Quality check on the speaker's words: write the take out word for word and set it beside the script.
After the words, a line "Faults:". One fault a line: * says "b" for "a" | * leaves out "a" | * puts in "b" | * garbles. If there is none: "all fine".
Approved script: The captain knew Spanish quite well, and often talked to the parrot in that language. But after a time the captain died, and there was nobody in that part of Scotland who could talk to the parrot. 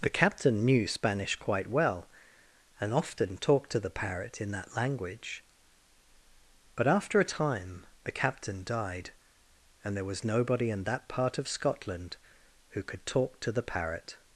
The captain knew Spanish quite well, and often talked to the parrot in that language. But after a time the captain died, and there was nobody in that part of Scotland who could talk to the parrot.
Faults:
all fine